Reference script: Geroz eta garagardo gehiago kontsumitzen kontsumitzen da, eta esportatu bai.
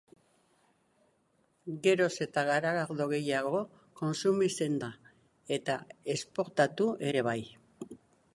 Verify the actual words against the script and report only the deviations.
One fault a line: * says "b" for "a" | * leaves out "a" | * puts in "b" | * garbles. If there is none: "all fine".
* leaves out "kontsumitzen"
* puts in "ere"